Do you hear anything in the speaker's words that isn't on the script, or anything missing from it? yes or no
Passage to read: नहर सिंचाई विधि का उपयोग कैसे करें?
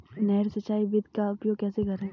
no